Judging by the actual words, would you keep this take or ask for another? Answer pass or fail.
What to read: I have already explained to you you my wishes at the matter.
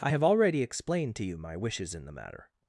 fail